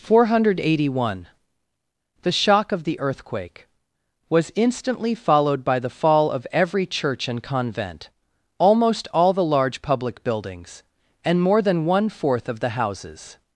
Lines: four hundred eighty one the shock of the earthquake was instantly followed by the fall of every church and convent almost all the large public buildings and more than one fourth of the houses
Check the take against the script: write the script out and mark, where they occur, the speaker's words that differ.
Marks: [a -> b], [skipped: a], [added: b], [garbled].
four hundred eighty one the shock of the earthquake was instantly followed by the fall of every church and convent almost all the large public buildings and more than one fourth of the houses